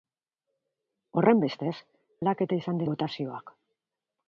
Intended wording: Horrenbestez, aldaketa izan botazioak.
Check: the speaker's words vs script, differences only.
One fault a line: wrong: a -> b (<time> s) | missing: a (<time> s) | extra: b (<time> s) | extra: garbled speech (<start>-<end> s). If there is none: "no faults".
no faults